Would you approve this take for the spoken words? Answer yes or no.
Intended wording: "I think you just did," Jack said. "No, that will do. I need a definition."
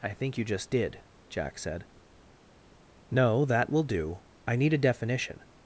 yes